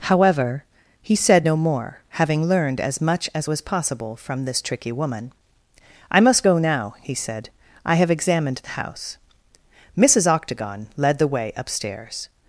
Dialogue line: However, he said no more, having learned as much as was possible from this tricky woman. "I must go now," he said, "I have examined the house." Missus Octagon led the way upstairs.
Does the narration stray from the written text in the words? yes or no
no